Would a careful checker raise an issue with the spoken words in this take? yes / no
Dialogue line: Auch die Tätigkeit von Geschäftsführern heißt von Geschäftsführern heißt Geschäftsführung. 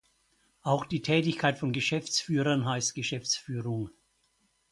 yes